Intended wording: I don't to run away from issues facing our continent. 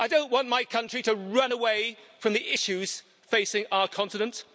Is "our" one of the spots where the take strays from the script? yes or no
no